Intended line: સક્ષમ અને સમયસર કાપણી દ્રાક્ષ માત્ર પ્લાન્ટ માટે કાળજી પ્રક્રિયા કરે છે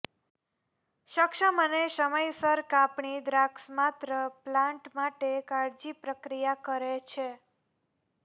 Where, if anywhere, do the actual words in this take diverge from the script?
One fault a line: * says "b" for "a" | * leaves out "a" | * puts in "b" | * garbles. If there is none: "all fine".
all fine